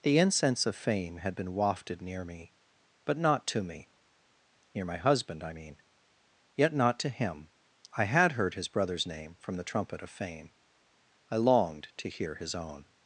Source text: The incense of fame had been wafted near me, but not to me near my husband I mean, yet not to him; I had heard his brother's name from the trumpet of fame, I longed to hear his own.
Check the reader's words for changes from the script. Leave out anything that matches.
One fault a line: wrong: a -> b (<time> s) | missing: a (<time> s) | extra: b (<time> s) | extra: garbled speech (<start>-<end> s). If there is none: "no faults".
no faults